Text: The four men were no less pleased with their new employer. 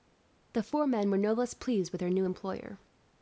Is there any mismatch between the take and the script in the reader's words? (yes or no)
no